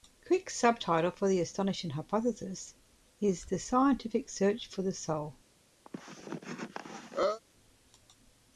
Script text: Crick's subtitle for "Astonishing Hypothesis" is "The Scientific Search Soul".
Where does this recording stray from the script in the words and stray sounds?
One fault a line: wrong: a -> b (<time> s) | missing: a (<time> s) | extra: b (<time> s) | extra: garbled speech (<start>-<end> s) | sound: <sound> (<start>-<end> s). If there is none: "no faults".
extra: The (1.3 s)
extra: For The (4.7 s)
sound: cough (5.9-7.4 s)